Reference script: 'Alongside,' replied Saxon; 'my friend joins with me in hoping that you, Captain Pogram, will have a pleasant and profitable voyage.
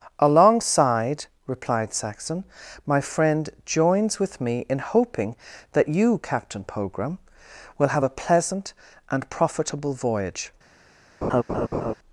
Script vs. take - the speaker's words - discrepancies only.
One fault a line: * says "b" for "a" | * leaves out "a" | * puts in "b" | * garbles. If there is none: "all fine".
all fine